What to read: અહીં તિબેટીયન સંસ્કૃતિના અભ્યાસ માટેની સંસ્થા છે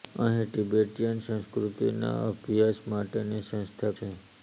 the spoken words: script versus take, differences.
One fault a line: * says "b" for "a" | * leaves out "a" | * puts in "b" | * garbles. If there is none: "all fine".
all fine